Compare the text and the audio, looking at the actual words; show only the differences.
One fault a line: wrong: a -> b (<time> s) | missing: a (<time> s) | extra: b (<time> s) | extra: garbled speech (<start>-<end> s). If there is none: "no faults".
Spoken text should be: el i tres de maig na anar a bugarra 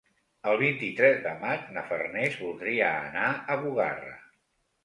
extra: vint (0.6 s)
extra: farners voldria (1.9 s)